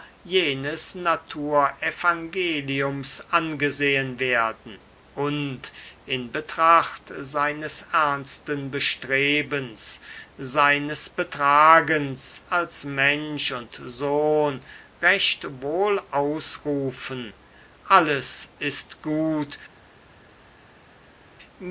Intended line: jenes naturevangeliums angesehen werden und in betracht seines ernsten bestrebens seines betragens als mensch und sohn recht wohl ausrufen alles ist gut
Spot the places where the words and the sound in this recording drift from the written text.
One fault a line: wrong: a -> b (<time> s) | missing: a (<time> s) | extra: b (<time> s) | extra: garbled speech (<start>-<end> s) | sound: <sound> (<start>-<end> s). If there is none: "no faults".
no faults